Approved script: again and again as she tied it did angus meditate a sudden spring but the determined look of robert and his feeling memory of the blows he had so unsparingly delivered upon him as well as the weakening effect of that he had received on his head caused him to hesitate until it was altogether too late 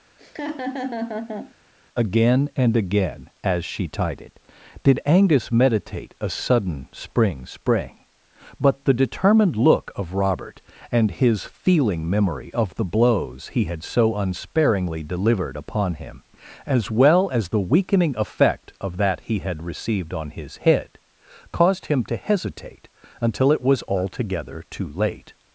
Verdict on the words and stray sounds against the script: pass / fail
fail